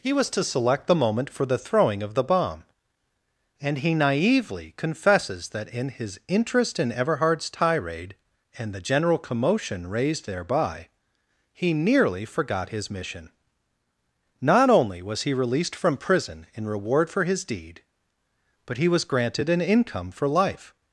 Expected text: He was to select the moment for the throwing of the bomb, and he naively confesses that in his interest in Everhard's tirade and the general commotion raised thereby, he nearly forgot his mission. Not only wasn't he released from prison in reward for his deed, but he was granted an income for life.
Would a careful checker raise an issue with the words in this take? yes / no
yes